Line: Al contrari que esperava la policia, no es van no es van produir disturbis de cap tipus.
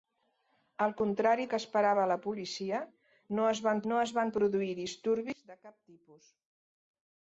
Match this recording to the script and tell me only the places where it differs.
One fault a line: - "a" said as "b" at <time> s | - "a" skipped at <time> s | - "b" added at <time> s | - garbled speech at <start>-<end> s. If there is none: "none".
none